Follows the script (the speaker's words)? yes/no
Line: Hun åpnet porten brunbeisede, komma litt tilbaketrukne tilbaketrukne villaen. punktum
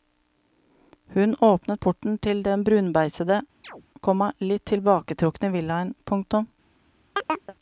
no